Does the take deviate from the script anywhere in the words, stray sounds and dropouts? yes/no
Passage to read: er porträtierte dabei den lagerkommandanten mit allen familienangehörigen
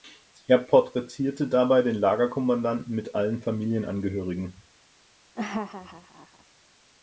yes